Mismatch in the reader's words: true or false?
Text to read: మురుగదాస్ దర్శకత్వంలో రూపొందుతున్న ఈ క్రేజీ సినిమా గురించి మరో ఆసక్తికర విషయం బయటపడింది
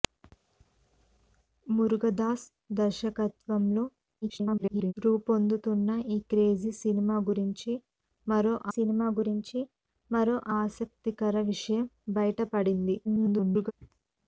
true